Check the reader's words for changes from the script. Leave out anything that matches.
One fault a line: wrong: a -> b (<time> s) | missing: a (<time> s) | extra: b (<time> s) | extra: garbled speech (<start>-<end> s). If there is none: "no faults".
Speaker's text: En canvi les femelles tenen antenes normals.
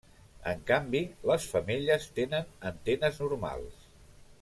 no faults